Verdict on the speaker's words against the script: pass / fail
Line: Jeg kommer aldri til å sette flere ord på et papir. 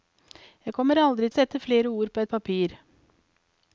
fail